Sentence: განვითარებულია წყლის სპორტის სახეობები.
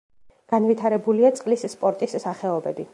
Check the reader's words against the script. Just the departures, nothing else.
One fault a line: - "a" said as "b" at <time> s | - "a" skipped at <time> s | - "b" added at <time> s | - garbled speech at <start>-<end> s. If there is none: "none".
none